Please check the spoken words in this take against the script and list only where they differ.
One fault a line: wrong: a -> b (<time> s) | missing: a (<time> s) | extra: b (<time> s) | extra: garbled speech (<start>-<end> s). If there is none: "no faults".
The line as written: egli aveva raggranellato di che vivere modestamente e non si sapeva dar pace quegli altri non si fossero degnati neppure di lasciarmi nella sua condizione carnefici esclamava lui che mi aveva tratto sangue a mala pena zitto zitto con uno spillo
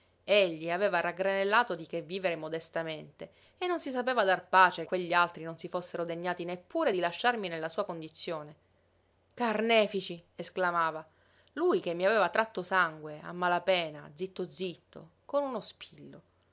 no faults